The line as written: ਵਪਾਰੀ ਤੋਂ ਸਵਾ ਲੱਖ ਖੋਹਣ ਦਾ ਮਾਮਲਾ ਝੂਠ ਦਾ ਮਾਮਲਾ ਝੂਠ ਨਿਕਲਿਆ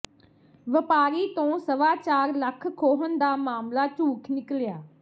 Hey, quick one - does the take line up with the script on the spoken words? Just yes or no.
no